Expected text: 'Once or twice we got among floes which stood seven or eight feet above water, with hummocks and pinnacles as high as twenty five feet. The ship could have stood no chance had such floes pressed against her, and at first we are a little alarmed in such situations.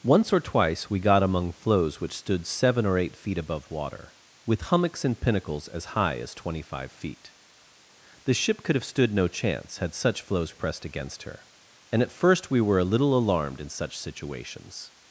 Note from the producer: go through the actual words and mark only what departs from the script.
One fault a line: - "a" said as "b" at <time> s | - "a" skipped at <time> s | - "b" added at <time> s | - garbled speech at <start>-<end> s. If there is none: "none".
- "are" said as "were" at 12.6 s